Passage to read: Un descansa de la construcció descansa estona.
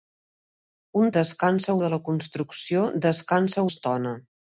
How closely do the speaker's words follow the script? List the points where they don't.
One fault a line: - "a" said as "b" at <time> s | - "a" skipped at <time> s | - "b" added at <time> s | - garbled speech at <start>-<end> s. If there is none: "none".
none